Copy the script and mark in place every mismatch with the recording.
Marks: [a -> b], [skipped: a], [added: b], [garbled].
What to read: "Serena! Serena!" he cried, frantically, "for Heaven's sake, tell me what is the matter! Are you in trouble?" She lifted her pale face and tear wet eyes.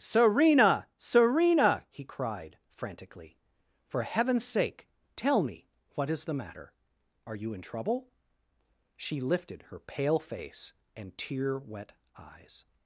"Serena! Serena!" he cried, frantically, "for Heaven's sake, tell me what is the matter! Are you in trouble?" She lifted her pale face and tear wet eyes.